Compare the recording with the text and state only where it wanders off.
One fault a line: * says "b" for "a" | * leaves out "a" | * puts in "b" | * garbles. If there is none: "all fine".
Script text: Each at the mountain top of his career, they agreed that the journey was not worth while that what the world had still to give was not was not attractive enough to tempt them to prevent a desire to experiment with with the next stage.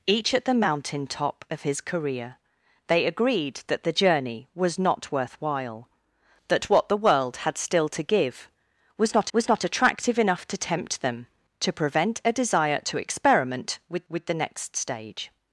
all fine